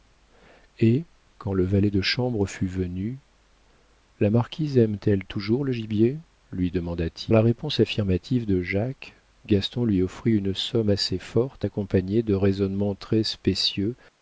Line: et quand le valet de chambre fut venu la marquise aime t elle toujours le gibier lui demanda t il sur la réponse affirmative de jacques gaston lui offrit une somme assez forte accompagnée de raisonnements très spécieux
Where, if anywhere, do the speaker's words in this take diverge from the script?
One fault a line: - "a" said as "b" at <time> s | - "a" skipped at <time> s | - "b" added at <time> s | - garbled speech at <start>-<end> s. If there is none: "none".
- "il sur" skipped at 7.3 s